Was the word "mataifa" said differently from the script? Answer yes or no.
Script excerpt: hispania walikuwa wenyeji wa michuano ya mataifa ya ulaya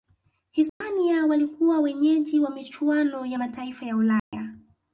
no